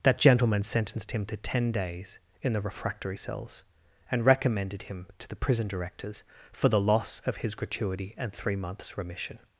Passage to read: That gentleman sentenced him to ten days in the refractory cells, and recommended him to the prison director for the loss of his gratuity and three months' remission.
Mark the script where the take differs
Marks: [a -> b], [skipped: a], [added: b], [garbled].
That gentleman sentenced him to ten days in the refractory cells, and recommended him to the prison [director -> directors] for the loss of his gratuity and three months' remission.